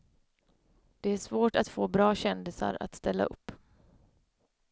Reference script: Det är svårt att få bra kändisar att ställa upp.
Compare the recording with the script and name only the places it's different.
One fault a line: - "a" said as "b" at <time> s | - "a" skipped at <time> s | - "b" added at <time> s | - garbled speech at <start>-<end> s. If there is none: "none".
none